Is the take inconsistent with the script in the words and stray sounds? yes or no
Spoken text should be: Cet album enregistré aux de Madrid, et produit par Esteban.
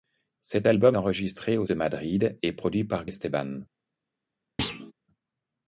yes